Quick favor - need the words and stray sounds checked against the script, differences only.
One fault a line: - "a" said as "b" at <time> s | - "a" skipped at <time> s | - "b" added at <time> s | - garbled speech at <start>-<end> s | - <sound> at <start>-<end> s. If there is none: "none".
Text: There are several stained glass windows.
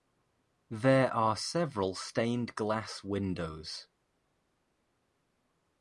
none